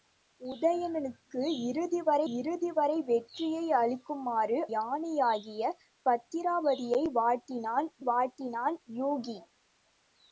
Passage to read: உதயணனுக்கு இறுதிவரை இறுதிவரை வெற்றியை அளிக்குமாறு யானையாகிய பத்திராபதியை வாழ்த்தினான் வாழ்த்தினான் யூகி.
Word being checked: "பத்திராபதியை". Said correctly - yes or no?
yes